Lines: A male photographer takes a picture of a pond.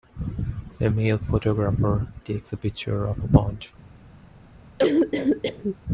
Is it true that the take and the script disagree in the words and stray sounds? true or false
true